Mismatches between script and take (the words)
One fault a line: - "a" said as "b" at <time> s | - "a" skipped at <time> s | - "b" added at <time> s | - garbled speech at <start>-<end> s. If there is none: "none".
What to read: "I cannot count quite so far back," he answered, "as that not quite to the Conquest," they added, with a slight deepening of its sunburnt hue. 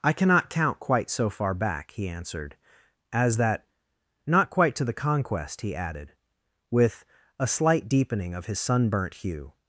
- "they" said as "he" at 5.6 s
- "its" said as "his" at 8.4 s